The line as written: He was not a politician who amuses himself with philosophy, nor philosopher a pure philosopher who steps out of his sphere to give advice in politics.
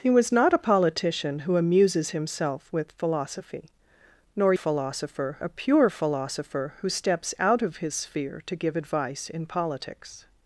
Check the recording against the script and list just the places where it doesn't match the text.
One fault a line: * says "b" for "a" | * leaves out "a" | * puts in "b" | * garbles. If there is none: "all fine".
all fine